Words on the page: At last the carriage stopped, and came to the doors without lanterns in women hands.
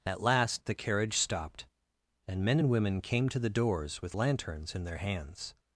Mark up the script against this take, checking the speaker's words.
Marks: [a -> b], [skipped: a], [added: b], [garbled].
At last the carriage stopped, and [added: men and women] came to the doors [without -> with] lanterns in [women -> their] hands.